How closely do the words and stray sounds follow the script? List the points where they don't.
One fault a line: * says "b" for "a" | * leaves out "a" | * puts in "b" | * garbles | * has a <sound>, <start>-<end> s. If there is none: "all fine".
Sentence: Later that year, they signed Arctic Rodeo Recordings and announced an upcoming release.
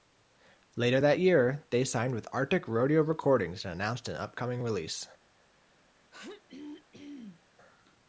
* puts in "with"
* has a throat clearing, 6.1-7.4 s